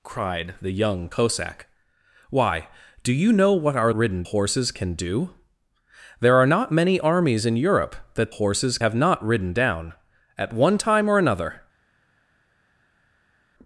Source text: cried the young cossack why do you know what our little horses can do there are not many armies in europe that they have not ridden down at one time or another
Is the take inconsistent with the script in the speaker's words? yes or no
yes